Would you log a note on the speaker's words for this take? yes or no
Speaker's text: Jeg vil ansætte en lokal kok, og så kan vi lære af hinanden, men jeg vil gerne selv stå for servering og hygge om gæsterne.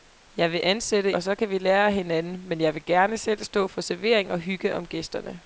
yes